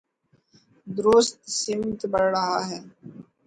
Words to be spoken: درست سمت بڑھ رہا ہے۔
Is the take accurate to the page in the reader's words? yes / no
yes